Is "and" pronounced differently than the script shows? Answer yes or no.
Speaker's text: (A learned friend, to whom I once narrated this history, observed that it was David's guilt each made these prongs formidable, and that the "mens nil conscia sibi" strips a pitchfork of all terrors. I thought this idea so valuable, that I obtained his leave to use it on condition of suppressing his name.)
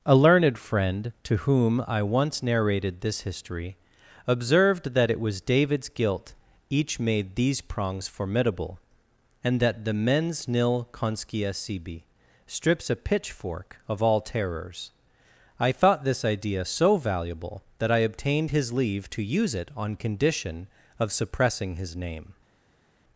no